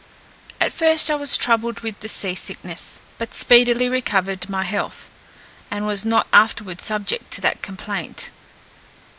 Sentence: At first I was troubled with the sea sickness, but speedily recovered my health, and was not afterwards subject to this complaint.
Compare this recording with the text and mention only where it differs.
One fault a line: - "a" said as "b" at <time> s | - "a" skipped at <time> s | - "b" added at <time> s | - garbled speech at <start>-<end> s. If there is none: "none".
- "this" said as "that" at 7.4 s